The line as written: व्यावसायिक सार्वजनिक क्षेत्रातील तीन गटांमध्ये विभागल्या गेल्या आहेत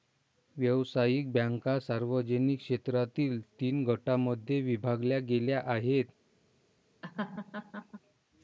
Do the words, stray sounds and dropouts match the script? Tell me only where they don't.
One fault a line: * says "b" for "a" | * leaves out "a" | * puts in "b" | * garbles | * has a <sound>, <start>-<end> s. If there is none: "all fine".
* puts in "बँका"
* has a laugh, 7.0-8.0 s